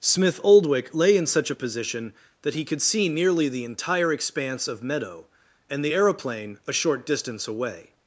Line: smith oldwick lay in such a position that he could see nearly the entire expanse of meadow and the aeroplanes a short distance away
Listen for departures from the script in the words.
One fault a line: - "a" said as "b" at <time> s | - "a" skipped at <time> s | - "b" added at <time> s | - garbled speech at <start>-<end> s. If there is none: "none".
- "aeroplanes" said as "aeroplane" at 5.9 s